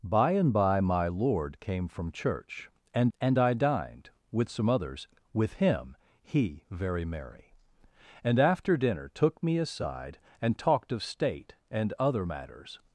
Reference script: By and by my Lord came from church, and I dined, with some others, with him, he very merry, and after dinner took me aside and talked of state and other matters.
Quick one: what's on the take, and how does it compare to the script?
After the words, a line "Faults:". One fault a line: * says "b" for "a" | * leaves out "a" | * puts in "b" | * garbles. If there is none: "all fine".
By and by my Lord came from church, and and I dined, with some others, with him, he very merry, and after dinner took me aside and talked of state and other matters.
Faults:
* puts in "and"